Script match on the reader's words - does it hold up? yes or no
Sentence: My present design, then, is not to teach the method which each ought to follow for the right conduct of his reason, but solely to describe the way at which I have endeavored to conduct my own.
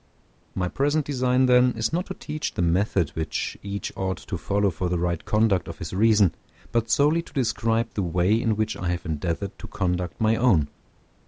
no